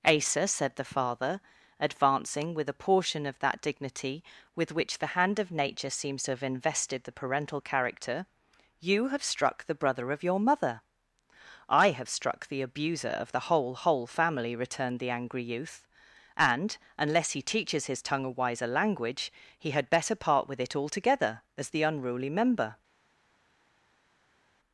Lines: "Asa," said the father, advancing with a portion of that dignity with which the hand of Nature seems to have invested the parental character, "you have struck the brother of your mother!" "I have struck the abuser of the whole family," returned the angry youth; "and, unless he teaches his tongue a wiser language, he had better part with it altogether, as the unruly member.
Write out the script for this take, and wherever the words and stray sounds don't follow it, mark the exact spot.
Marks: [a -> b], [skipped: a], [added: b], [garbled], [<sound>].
"Asa," said the father, advancing with a portion of that dignity with which the hand of Nature seems to have invested the parental character, "you have struck the brother of your mother!" "I have struck the abuser of the whole [added: whole] family," returned the angry youth; "and, unless he teaches his tongue a wiser language, he had better part with it altogether, as the unruly member.